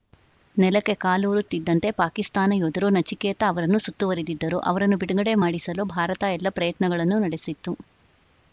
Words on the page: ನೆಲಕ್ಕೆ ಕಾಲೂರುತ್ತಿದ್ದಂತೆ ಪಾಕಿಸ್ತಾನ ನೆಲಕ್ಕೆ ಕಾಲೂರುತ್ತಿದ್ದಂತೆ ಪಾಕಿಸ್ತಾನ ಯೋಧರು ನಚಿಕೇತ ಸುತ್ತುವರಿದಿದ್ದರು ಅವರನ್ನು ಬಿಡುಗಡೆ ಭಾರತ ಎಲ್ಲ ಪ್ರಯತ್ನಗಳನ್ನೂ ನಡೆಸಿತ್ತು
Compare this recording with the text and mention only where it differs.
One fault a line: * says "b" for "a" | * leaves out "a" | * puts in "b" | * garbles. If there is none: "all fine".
* leaves out "ನೆಲಕ್ಕೆ ಕಾಲೂರುತ್ತಿದ್ದಂತೆ ಪಾಕಿಸ್ತಾನ"
* puts in "ಅವರನ್ನು"
* puts in "ಮಾಡಿಸಲು"